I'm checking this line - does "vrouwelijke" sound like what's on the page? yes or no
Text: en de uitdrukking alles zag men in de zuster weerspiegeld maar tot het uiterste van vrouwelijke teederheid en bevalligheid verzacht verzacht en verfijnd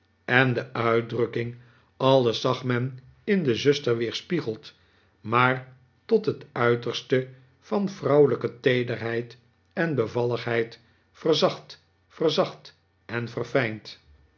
yes